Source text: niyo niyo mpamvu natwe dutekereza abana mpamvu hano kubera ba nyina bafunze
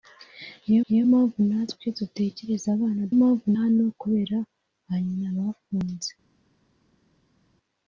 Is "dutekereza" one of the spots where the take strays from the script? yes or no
no